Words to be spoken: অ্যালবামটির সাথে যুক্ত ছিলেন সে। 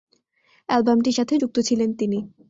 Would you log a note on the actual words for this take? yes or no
yes